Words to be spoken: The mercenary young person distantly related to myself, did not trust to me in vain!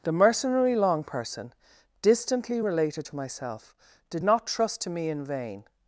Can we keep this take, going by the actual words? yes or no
no